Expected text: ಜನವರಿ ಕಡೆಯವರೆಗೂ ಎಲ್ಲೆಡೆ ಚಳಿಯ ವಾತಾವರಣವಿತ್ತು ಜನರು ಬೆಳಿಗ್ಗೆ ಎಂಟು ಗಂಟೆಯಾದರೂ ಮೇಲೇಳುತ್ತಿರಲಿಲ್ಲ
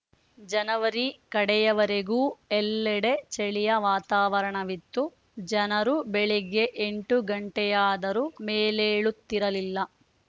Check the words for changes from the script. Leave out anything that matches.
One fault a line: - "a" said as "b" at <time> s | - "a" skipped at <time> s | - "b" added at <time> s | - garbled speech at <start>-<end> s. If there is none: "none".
none